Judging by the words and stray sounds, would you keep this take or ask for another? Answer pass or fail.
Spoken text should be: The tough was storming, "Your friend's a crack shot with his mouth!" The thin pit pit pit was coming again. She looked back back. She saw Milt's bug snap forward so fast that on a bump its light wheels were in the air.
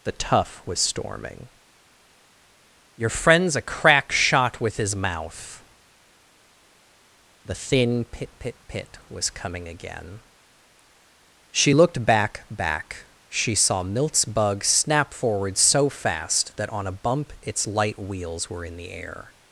pass